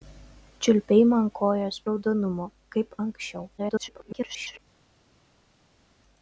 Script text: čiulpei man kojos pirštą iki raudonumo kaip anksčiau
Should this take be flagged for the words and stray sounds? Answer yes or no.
yes